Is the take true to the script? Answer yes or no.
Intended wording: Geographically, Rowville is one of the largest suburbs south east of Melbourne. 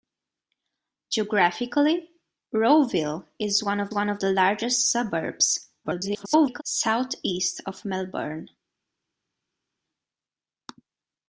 no